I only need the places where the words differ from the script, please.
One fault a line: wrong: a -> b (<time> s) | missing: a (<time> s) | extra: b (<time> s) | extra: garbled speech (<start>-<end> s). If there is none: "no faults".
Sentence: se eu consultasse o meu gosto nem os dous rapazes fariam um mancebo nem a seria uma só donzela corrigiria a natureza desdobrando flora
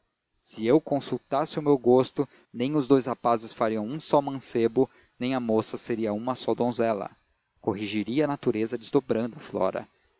extra: só (4.0 s)
extra: moça (5.4 s)